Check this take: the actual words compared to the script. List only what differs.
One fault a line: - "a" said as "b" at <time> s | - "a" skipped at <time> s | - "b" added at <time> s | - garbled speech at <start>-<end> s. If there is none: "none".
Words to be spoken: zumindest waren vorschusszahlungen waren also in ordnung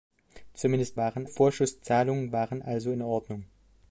none